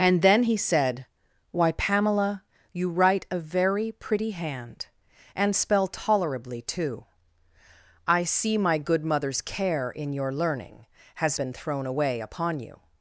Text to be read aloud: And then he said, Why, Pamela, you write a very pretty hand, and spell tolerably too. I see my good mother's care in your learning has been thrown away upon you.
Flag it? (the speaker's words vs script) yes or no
no